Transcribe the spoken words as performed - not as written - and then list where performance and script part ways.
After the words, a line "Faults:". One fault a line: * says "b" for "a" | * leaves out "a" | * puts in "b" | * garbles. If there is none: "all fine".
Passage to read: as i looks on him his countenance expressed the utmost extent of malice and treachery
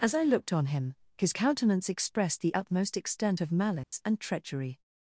as i looked on him his countenance expressed the utmost extent of malice and treachery
Faults:
* says "looked" for "looks"